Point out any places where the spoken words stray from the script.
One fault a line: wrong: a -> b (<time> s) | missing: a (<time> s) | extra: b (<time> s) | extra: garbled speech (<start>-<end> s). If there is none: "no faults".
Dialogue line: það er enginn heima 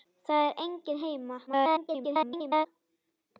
extra: garbled speech (1.5-2.7 s)